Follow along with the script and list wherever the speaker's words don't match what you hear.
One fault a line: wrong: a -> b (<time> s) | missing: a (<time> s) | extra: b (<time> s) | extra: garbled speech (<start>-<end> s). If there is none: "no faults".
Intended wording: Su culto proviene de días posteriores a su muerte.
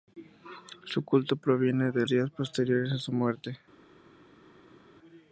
no faults